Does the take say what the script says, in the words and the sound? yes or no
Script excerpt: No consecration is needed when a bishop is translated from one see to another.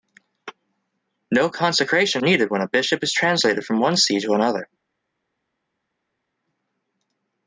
no